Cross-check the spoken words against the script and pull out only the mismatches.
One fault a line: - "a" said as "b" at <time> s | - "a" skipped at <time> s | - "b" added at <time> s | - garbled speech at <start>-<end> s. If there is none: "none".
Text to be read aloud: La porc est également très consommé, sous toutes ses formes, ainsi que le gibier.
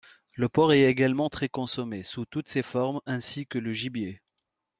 - "La" said as "Le" at 0.3 s